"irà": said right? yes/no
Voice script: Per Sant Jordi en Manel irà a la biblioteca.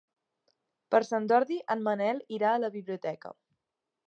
yes